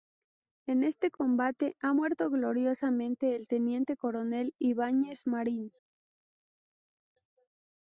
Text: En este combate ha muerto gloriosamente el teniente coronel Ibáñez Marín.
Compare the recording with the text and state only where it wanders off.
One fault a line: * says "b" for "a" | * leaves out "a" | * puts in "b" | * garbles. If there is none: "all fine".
all fine